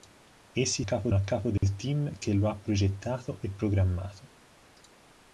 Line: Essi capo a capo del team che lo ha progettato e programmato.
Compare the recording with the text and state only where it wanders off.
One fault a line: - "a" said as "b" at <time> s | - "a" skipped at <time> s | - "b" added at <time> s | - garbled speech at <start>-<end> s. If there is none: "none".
none